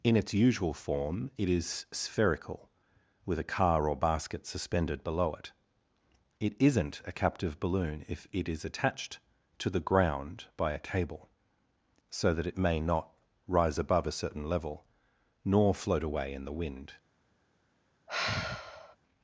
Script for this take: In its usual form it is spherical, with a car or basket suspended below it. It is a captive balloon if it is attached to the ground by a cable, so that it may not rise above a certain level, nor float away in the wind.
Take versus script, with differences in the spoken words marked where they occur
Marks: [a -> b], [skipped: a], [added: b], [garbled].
In its usual form it is spherical, with a car or basket suspended below it. It [is -> isn't] a captive balloon if it is attached to the ground by a cable, so that it may not rise above a certain level, nor float away in the wind.